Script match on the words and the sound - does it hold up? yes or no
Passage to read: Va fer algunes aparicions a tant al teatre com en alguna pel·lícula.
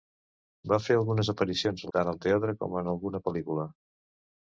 yes